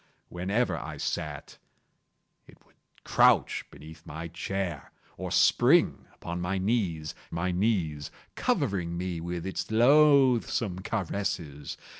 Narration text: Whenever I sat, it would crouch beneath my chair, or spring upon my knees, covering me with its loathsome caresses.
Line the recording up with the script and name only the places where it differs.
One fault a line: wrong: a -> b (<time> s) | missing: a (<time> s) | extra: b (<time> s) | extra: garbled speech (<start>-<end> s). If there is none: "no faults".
extra: my knees (7.3 s)